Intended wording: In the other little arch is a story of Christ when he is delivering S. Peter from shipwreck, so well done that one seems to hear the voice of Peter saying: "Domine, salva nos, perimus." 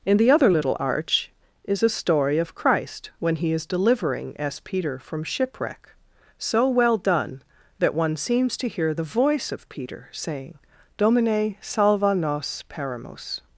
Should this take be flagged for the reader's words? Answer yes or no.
no